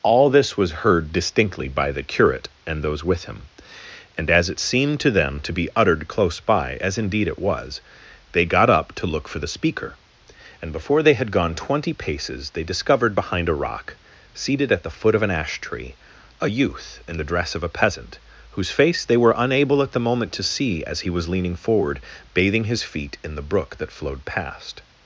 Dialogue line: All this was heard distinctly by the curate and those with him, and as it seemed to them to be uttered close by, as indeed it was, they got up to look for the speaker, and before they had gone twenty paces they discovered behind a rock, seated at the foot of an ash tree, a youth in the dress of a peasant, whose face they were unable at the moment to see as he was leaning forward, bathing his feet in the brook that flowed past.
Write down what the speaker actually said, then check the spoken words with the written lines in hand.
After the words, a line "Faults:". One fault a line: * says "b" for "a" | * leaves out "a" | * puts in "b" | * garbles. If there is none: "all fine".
All this was heard distinctly by the curate and those with him, and as it seemed to them to be uttered close by, as indeed it was, they got up to look for the speaker, and before they had gone twenty paces they discovered behind a rock, seated at the foot of an ash tree, a youth in the dress of a peasant, whose face they were unable at the moment to see as he was leaning forward, bathing his feet in the brook that flowed past.
Faults:
all fine